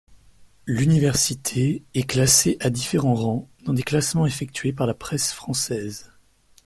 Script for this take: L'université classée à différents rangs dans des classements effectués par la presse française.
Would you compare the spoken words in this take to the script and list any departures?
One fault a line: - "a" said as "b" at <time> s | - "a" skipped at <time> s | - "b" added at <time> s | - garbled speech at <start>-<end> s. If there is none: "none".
- "est" added at 1.9 s